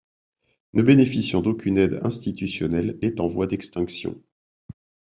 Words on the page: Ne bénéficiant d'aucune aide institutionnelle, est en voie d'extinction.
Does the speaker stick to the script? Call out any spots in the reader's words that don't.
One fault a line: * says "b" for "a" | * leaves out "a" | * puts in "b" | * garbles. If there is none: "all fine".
all fine